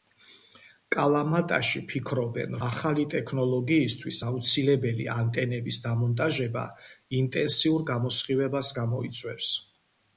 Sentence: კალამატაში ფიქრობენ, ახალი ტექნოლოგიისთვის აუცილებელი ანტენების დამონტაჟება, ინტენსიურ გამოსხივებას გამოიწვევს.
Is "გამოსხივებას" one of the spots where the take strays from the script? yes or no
no